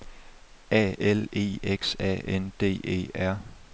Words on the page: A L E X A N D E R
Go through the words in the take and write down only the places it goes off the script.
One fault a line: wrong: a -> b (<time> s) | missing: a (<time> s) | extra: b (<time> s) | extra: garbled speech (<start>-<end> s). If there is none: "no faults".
no faults